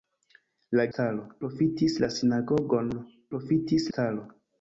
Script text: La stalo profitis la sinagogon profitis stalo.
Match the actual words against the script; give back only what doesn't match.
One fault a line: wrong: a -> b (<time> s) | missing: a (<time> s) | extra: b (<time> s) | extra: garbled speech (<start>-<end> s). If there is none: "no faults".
no faults